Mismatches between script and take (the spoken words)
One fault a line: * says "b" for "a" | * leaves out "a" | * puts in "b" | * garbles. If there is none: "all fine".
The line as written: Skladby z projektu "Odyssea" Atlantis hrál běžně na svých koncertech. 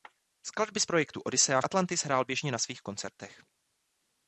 all fine